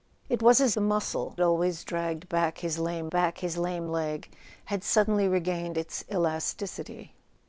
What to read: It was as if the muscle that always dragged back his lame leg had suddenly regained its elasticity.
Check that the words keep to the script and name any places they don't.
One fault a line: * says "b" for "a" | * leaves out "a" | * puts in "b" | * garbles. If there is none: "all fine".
* leaves out "if"
* leaves out "that"
* puts in "back his lame"